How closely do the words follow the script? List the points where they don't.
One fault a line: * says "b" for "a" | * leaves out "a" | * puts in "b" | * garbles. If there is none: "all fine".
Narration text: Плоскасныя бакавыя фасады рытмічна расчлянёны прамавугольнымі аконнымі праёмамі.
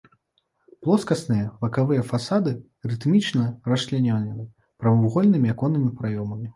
all fine